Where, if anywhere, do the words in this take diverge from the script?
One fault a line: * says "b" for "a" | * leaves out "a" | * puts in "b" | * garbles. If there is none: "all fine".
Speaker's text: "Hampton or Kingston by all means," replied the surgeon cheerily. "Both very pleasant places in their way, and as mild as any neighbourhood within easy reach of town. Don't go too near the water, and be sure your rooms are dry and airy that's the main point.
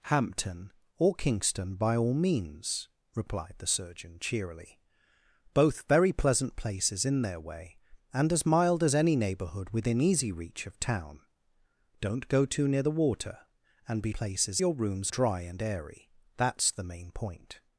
* says "places" for "sure"
* leaves out "are"